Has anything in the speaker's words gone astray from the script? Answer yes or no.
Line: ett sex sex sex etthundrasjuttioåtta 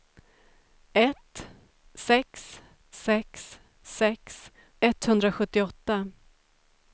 no